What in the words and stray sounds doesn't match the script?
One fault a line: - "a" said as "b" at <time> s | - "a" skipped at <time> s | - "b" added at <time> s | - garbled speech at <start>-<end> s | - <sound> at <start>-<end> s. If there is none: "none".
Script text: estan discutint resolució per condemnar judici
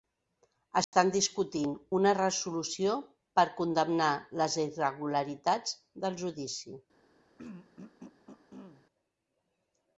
- dropout at 0.8-0.9 s
- "una" added at 2.0 s
- "les irregularitats del" added at 4.4 s
- throat clearing at 7.4-8.8 s